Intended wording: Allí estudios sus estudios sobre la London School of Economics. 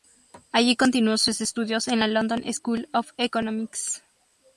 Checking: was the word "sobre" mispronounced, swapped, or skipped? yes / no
yes